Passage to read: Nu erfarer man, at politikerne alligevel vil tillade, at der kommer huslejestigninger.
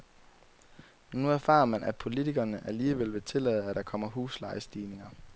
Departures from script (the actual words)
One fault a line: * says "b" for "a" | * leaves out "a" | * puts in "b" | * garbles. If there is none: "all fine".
all fine